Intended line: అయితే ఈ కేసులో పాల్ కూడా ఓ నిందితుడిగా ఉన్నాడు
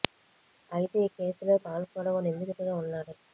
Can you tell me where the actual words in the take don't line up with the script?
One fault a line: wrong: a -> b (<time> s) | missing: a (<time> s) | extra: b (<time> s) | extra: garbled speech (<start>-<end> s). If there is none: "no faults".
no faults